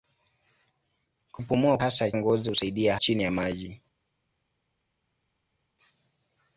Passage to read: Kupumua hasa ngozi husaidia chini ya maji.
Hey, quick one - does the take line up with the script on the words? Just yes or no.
yes